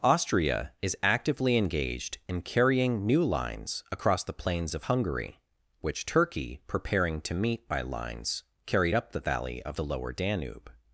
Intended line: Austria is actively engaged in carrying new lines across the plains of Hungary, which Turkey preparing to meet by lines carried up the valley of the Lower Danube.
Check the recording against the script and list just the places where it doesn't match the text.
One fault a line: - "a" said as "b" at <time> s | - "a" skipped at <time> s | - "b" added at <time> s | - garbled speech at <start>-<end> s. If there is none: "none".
none